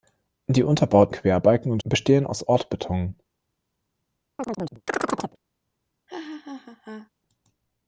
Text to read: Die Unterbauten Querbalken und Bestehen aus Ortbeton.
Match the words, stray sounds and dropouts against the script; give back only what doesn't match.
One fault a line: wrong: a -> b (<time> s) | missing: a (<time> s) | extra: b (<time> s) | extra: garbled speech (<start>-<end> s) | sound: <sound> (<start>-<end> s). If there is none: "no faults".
sound: chirp (4.4-5.4 s)
sound: laugh (6.1-7.1 s)